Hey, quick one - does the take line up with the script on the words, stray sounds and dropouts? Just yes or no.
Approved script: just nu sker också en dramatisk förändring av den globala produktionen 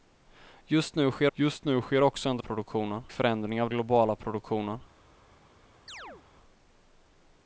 no